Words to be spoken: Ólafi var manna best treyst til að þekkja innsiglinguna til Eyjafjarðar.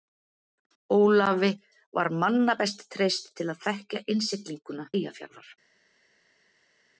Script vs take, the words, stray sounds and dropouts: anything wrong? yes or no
yes